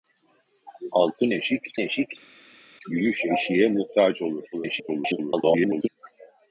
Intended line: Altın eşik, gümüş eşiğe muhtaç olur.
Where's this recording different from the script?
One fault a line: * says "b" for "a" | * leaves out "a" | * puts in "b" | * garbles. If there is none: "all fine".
* puts in "eşik"
* garbles